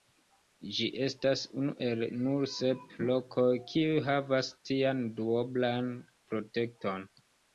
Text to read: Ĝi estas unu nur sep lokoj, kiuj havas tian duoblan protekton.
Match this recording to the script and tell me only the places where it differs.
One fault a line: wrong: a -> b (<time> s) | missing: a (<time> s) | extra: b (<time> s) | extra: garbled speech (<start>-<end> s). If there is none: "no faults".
extra: el (1.9 s)